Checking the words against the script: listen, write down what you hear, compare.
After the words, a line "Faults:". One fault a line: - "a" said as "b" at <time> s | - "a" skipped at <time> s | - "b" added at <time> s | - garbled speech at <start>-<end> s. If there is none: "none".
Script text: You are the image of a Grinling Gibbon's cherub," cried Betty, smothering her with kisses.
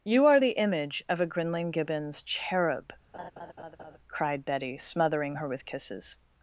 You are the image of a Grinling Gibbon's cherub," cried Betty, smothering her with kisses.
Faults:
none